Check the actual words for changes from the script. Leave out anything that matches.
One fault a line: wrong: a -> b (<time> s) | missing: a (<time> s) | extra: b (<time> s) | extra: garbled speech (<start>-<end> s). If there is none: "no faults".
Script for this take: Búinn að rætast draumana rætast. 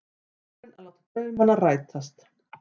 wrong: rætast -> láta (0.8 s)